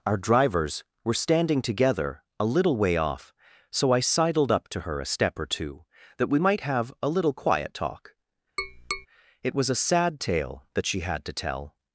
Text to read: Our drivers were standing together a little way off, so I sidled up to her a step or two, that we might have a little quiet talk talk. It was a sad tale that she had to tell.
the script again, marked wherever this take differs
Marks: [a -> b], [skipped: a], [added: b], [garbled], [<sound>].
Our drivers were standing together a little way off, so I sidled up to her a step or two, that we might have a little quiet talk [skipped: talk.] [tap] It was a sad tale that she had to tell.